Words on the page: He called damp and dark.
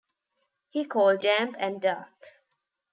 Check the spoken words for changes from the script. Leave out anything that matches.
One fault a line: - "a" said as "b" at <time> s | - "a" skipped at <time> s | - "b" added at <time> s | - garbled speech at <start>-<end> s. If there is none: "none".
none